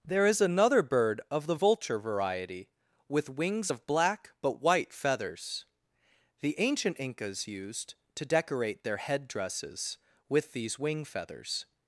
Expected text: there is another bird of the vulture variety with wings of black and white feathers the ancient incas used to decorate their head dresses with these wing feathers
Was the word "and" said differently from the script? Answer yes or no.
yes